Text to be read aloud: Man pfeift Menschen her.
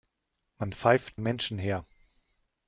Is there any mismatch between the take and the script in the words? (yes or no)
no